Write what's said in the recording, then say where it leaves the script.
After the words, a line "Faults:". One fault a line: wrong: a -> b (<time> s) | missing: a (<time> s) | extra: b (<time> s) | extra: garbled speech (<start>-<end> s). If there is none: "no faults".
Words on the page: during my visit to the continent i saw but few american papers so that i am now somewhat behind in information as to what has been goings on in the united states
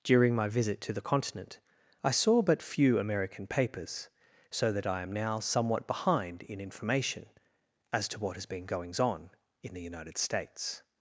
during my visit to the continent i saw but few american papers so that i am now somewhat behind in information as to what has been goings on in the united states
Faults:
no faults